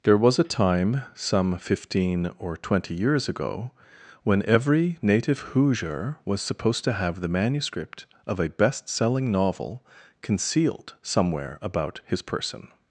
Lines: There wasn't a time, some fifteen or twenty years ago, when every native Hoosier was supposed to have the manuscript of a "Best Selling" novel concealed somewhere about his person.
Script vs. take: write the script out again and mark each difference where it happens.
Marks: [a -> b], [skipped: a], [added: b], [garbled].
There [wasn't -> was] a time, some fifteen or twenty years ago, when every native Hoosier was supposed to have the manuscript of a "Best Selling" novel concealed somewhere about his person.